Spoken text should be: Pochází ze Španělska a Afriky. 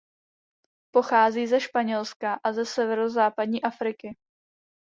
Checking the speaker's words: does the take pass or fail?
fail